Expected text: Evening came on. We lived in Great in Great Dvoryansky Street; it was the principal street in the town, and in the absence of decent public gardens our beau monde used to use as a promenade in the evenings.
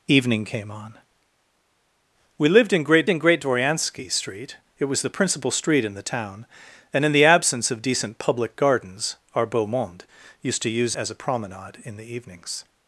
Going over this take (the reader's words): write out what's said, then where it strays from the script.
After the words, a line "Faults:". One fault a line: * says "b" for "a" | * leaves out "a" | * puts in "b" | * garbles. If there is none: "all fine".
Evening came on. We lived in Great in Great Dvoryansky Street; it was the principal street in the town, and in the absence of decent public gardens our beau monde used to use as a promenade in the evenings.
Faults:
all fine